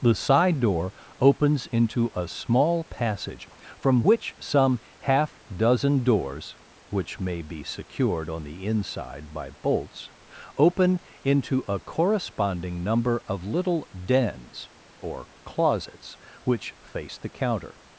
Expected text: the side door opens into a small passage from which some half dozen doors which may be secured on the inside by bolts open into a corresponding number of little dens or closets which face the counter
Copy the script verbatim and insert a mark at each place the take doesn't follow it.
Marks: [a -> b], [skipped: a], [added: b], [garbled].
the side door opens into a small passage from which some half dozen doors which may be secured on the inside by bolts open into a corresponding number of little dens or closets which face the counter